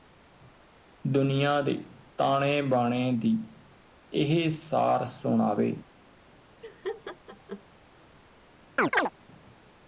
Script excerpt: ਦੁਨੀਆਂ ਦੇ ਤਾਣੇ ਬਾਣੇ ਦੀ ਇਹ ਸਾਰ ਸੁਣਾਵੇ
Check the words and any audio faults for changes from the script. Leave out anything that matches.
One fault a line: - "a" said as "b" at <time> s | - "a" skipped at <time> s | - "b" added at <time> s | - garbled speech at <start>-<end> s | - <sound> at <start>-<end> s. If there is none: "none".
- laugh at 6.6-7.6 s
- chirp at 8.8-9.1 s